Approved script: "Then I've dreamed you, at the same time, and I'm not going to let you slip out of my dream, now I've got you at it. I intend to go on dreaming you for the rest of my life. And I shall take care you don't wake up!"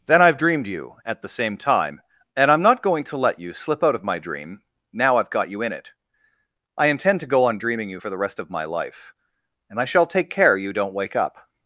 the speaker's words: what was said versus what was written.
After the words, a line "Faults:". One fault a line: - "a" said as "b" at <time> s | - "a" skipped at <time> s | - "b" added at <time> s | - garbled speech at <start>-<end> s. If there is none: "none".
"Then I've dreamed you, at the same time, and I'm not going to let you slip out of my dream, now I've got you in it. I intend to go on dreaming you for the rest of my life. And I shall take care you don't wake up!"
Faults:
- "at" said as "in" at 5.6 s